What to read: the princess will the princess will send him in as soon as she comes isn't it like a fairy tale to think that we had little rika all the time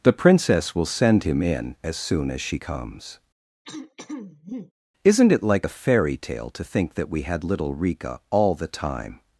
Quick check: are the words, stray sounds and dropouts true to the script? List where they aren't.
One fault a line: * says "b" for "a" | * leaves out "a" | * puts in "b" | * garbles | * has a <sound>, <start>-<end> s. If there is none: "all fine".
* leaves out "the princess will"
* has a throat clearing, 3.6-4.7 s